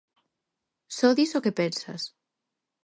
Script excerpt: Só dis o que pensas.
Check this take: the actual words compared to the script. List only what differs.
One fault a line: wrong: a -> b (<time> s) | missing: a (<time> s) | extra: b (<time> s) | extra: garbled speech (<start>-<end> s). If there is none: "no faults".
no faults